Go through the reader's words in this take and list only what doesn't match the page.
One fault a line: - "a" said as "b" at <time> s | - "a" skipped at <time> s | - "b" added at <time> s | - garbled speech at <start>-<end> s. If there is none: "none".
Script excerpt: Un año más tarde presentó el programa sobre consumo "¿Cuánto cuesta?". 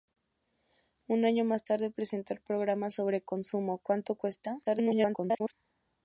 - garbled speech at 4.6-5.5 s